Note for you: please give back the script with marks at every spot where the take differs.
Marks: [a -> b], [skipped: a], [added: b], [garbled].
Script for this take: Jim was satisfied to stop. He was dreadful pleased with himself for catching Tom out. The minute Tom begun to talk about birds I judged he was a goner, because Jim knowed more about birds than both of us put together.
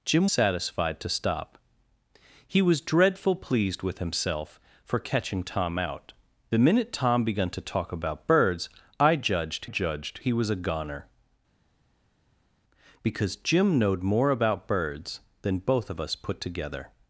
Jim [skipped: was] satisfied to stop. He was dreadful pleased with himself for catching Tom out. The minute Tom begun to talk about birds I judged [added: judged] he was a goner, because Jim knowed more about birds than both of us put together.